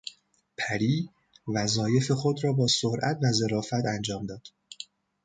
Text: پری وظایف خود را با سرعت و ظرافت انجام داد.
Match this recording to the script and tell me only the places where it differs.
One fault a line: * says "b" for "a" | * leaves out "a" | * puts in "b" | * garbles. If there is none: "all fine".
all fine